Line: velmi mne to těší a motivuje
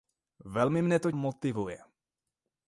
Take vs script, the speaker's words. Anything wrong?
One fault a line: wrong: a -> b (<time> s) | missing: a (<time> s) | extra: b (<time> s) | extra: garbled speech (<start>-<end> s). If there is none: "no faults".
missing: těší a (1.1 s)